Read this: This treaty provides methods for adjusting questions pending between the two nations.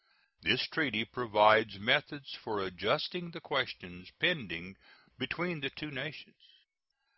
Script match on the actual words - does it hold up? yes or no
no